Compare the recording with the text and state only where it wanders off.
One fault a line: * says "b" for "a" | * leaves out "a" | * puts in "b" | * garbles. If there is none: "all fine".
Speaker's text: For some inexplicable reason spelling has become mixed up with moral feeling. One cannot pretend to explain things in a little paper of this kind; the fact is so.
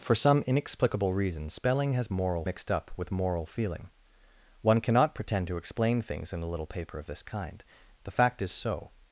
* says "moral" for "become"